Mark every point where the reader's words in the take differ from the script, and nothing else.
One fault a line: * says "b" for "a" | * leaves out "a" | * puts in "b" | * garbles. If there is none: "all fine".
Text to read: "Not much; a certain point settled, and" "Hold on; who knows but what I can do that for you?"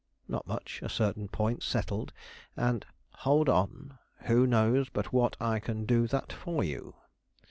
all fine